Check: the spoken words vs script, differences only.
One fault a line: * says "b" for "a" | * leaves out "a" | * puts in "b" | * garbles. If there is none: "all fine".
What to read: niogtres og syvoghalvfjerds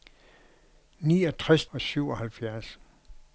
all fine